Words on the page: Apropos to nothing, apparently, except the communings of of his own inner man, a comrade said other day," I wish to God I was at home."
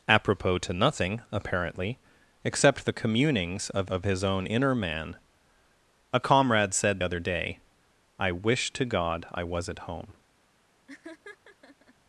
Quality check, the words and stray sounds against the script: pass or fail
fail